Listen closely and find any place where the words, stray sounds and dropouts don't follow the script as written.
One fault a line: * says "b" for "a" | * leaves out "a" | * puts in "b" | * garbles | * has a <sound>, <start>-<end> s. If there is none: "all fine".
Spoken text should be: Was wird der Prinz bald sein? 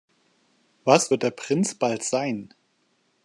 all fine